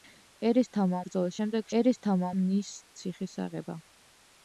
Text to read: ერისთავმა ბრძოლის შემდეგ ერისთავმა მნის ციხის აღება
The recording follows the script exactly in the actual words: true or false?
true